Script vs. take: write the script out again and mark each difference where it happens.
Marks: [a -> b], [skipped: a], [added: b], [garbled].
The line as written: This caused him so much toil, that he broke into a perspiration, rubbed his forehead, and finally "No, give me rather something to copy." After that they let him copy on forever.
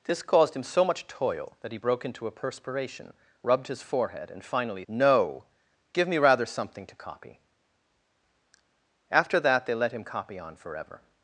This caused him so much toil, that he broke into a perspiration, rubbed his forehead, and finally "No, give me rather something to copy." After that they let him copy on forever.